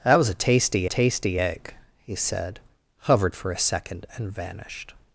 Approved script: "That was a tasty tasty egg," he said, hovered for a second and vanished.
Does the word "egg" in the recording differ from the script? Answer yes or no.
no